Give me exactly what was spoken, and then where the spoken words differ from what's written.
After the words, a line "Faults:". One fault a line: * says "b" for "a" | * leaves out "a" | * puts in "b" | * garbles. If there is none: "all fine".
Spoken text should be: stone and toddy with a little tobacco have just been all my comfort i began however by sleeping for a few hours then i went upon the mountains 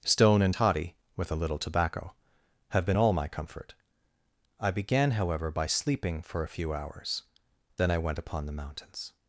stone and toddy with a little tobacco have been all my comfort i began however by sleeping for a few hours then i went upon the mountains
Faults:
* leaves out "just"